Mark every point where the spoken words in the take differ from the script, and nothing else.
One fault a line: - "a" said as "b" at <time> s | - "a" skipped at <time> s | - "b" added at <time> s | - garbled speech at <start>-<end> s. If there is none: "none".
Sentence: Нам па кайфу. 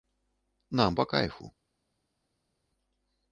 none